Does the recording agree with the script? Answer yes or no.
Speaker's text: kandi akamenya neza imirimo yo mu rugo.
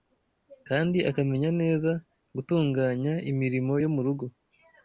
no